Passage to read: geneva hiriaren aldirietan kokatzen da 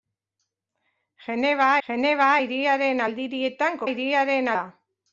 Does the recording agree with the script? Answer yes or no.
no